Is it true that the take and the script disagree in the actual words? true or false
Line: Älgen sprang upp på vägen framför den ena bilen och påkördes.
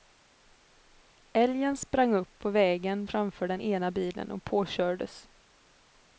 false